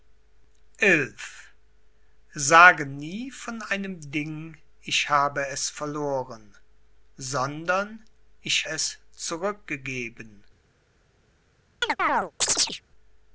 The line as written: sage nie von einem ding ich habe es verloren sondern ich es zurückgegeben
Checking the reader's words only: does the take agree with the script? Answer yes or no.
yes